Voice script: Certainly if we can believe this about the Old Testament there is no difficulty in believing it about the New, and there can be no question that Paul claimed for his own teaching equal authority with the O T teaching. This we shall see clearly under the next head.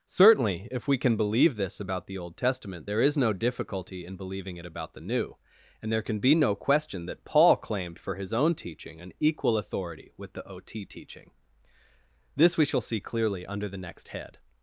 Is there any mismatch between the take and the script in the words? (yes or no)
yes